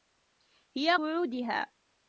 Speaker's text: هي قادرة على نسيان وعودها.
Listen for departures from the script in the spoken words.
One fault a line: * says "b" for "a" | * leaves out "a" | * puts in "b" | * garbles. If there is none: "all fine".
* leaves out "قادرة على نسيان"